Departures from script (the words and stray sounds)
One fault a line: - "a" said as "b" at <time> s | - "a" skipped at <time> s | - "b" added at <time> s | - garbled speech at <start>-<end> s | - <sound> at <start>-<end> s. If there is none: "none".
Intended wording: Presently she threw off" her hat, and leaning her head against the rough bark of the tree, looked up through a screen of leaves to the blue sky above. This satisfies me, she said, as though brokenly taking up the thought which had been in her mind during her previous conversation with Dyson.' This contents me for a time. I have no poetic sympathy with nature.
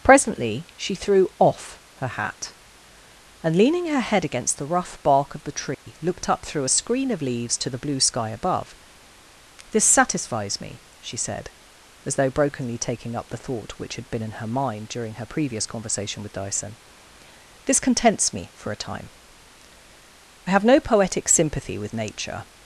- dropout at 5.7-5.9 s